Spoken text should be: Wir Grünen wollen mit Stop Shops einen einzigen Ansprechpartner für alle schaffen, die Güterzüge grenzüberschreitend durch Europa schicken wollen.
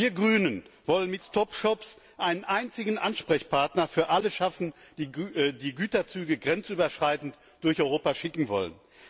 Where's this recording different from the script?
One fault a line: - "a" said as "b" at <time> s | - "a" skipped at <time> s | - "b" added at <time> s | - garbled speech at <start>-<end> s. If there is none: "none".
none